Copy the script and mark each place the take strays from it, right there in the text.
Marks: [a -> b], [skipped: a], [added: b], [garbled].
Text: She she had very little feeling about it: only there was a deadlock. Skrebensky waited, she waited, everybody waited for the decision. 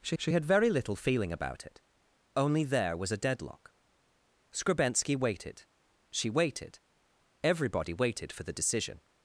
She she had very little feeling about it: only there was a deadlock. Skrebensky waited, she waited, everybody waited for the decision.